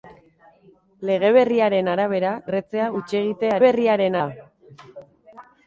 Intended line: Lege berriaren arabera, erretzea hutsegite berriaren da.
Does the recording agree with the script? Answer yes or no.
yes